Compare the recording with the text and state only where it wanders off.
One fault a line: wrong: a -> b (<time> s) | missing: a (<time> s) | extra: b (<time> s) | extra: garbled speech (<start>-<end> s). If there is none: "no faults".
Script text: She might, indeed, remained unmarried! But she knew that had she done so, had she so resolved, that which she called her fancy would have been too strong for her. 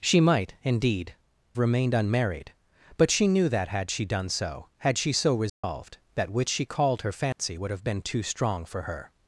no faults